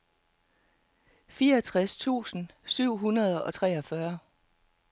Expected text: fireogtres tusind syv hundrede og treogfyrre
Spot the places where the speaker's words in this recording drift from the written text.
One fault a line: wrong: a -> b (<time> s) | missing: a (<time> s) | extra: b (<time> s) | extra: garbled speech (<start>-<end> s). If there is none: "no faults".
no faults